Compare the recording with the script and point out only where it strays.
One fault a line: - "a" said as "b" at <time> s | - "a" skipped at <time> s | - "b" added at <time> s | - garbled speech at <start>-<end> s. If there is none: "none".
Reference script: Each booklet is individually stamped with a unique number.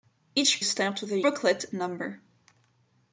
- "booklet is individually" skipped at 0.6 s
- "unique" said as "booklet" at 1.2 s